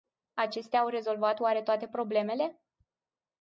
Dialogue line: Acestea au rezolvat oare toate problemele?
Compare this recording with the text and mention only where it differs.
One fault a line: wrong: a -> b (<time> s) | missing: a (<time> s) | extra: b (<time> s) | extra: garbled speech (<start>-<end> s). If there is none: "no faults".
no faults